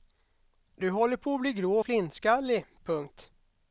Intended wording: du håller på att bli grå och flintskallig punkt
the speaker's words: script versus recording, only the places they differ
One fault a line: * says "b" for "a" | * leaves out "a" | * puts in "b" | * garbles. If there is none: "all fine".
all fine